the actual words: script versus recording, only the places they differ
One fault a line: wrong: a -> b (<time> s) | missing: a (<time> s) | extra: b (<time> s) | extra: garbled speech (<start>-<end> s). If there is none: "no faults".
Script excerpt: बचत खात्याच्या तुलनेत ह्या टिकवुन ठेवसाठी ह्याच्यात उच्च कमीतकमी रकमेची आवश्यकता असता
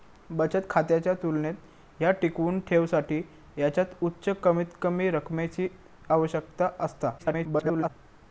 extra: garbled speech (7.2-7.9 s)